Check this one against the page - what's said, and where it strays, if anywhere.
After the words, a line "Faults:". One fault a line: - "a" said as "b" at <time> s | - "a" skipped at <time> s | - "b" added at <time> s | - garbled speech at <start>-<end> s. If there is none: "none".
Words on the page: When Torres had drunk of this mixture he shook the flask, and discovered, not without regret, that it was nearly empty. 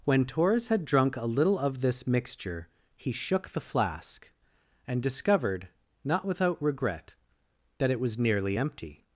When Torres had drunk a little of this mixture he shook the flask, and discovered, not without regret, that it was nearly empty.
Faults:
- "a little" added at 1.1 s